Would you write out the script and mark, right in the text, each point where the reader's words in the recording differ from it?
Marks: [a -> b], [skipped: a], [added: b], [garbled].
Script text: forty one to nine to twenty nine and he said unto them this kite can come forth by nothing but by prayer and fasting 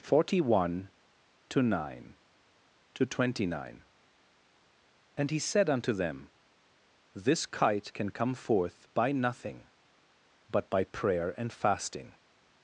forty one to nine to twenty nine and he said unto them this kite can come forth by nothing but by prayer and fasting